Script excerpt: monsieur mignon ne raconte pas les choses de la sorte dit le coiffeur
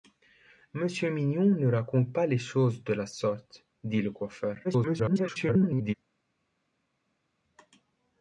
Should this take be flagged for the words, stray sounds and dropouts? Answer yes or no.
yes